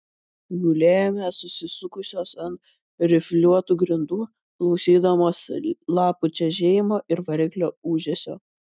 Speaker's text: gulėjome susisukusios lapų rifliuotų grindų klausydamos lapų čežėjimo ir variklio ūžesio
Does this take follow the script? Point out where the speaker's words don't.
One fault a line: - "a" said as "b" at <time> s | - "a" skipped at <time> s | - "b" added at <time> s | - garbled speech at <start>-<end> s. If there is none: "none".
- "lapų" said as "ant" at 2.5 s